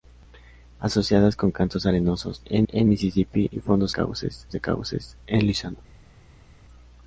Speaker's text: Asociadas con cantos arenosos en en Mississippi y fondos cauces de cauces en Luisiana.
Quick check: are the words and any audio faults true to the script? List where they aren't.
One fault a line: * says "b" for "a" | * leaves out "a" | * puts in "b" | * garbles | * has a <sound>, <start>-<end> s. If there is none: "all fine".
all fine